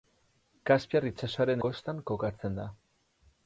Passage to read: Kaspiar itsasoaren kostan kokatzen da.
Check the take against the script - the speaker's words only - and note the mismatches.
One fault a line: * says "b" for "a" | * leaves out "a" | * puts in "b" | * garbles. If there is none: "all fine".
all fine